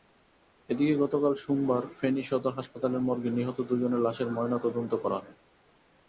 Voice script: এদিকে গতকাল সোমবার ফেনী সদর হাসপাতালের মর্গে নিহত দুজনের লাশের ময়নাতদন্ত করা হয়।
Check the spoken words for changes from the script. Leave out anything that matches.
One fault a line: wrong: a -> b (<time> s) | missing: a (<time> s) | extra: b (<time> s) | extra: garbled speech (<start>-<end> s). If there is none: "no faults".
no faults